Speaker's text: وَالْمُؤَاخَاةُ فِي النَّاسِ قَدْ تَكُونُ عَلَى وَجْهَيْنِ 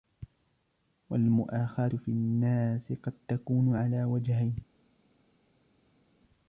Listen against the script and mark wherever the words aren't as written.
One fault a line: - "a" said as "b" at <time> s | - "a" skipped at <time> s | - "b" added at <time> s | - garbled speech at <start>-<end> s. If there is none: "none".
none